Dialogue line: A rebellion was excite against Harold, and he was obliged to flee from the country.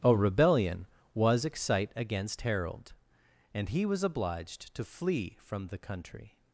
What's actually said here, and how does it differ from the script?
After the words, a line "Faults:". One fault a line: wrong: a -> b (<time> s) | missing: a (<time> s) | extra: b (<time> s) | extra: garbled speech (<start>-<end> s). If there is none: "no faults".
A rebellion was excite against Harold, and he was obliged to flee from the country.
Faults:
no faults